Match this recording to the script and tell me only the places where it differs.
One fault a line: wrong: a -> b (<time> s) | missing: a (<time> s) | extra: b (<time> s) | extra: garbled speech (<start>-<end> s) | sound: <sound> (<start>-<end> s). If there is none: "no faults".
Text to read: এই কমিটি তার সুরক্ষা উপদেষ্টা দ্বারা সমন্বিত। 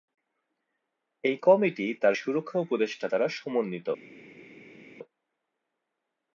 no faults